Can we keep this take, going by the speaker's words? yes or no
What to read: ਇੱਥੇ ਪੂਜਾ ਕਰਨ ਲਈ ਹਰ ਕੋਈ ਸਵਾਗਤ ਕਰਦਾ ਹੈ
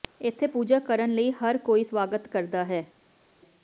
yes